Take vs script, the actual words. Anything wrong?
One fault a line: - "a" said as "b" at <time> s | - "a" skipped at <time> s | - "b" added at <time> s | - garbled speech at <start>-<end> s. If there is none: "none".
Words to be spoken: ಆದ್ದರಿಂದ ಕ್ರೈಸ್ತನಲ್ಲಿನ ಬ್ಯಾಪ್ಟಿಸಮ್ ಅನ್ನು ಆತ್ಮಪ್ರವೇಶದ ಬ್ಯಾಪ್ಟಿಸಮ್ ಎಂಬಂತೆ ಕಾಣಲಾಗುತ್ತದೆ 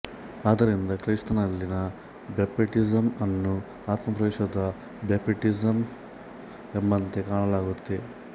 none